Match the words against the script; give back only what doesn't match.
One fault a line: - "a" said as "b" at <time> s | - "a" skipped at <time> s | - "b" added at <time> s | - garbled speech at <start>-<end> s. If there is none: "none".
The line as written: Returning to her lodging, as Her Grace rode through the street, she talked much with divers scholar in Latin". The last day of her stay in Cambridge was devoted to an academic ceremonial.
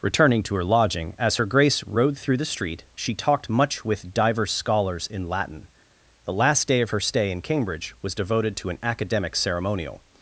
- "scholar" said as "scholars" at 4.5 s